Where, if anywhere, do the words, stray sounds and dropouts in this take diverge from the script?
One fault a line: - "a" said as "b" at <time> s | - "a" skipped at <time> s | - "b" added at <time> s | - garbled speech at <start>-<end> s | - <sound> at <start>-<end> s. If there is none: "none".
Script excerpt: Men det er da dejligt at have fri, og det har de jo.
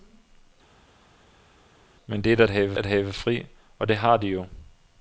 - "dejligt" said as "have" at 2.5 s